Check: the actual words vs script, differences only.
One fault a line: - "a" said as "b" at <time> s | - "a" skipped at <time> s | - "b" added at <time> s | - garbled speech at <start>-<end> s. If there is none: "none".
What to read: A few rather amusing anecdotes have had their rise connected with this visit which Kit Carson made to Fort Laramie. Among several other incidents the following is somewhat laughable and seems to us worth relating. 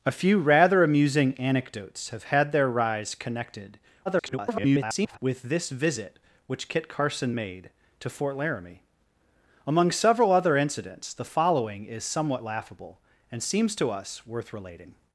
- garbled speech at 4.1-5.2 s